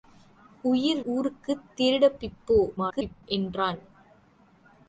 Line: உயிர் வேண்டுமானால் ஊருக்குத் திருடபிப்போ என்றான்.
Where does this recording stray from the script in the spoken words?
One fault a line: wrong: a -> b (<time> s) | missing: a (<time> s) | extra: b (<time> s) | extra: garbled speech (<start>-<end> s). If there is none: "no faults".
missing: வேண்டுமானால் (1.0 s)
extra: garbled speech (2.8-3.2 s)